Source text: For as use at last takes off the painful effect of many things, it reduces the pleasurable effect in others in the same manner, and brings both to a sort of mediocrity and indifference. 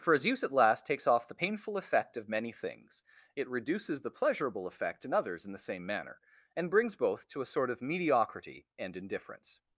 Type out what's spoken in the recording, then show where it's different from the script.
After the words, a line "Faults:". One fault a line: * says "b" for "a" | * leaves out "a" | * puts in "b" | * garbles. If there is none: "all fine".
For as use at last takes off the painful effect of many things, it reduces the pleasurable effect in others in the same manner, and brings both to a sort of mediocrity and indifference.
Faults:
all fine